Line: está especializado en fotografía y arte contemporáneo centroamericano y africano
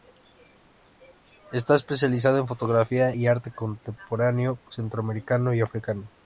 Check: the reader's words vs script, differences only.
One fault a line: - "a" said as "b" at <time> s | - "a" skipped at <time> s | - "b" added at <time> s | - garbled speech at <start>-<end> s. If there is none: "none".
none